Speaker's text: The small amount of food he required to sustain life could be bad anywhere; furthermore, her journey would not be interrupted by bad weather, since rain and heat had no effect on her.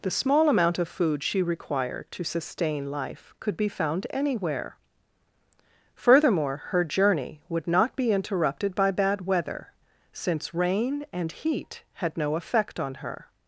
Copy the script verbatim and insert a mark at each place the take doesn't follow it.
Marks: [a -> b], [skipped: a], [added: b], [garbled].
The small amount of food [he -> she] required to sustain life could be [bad -> found] anywhere; furthermore, her journey would not be interrupted by bad weather, since rain and heat had no effect on her.